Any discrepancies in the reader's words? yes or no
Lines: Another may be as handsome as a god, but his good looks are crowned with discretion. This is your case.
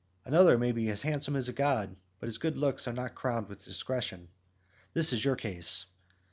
yes